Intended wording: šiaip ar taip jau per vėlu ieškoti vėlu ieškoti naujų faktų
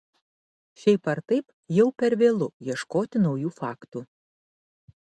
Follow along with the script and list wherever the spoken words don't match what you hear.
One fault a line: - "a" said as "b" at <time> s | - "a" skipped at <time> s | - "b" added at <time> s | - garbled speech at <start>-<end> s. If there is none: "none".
- "vėlu ieškoti" skipped at 3.2 s